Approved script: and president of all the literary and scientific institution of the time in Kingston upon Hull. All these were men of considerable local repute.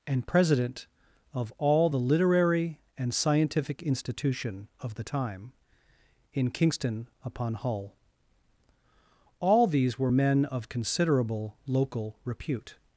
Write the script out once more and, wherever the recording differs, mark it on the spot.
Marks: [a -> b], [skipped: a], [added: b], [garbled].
and president of all the literary and scientific institution of the time in Kingston upon Hull. All these were men of considerable local repute.